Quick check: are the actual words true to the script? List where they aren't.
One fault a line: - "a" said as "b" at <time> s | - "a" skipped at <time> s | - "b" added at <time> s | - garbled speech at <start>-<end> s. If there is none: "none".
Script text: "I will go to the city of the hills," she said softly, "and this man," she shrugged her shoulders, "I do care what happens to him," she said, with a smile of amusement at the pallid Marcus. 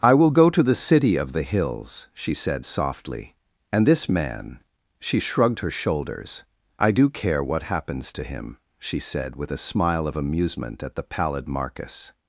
none